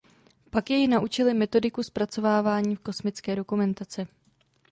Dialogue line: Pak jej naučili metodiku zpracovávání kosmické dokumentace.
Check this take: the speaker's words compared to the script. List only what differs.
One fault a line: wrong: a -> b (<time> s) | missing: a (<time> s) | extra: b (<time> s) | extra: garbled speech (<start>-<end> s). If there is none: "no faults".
no faults